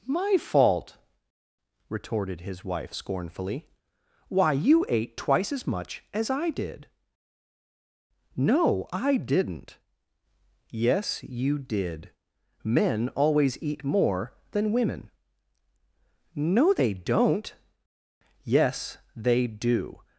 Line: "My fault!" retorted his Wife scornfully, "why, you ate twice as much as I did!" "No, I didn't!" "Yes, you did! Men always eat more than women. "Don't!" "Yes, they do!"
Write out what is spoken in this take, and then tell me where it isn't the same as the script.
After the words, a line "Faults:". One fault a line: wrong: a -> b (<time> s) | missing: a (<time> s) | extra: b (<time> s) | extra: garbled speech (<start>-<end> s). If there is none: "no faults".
"My fault!" retorted his Wife scornfully, "why, you ate twice as much as I did!" "No, I didn't!" "Yes, you did! Men always eat more than women. "No, they don't!" "Yes, they do!"
Faults:
extra: No they (16.3 s)